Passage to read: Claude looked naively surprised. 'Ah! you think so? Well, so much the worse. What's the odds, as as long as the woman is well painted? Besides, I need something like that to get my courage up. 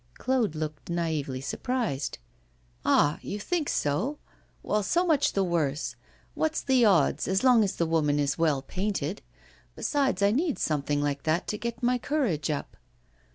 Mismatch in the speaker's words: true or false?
true